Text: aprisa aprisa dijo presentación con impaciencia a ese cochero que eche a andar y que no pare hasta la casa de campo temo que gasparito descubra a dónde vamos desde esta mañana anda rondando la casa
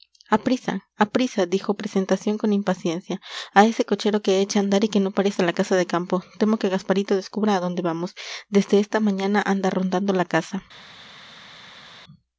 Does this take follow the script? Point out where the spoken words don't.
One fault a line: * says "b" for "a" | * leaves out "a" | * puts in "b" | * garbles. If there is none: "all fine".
all fine